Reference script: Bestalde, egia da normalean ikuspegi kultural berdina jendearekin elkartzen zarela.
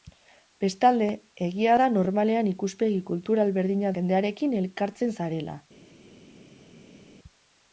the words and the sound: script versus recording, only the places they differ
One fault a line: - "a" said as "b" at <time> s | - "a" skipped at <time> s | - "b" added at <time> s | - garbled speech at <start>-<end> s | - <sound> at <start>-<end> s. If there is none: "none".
none